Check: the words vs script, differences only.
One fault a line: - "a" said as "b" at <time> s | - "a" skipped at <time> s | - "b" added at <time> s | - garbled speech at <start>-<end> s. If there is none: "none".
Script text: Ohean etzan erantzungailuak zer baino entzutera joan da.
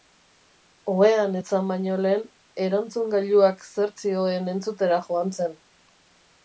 - "baino lehen" added at 1.7 s
- "baino" said as "zioen" at 4.0 s
- "da" said as "zen" at 5.4 s